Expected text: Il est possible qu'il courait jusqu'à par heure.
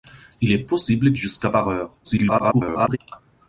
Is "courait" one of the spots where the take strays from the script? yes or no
yes